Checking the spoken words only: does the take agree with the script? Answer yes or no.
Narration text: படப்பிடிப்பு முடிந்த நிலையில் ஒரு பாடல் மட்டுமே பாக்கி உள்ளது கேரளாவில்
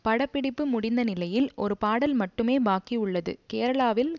yes